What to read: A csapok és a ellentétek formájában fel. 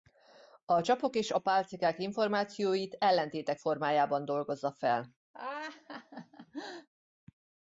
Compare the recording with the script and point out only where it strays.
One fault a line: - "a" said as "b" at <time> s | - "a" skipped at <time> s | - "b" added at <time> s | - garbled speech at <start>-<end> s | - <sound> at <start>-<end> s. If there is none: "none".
- "pálcikák információit" added at 1.4 s
- "dolgozza" added at 4.2 s
- laugh at 5.3-6.9 s